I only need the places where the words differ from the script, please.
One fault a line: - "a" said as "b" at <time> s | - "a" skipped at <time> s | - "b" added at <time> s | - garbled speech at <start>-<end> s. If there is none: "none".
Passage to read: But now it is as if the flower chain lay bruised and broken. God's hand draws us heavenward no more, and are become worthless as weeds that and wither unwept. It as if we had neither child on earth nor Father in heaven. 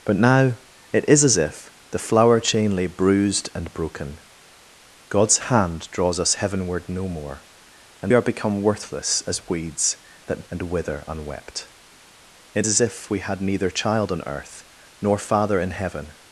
none